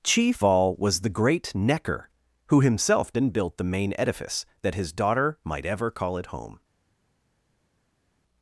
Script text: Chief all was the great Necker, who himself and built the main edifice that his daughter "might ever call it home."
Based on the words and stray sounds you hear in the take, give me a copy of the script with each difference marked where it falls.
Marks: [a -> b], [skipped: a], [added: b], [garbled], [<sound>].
Chief all was the great Necker, who himself and built the main edifice that his daughter "might ever call it home."